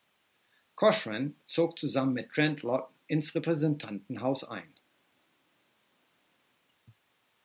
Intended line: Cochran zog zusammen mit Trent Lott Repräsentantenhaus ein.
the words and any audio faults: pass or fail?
fail